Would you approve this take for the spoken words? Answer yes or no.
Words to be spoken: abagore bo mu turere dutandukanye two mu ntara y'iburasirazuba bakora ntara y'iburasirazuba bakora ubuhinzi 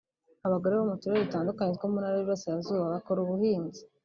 no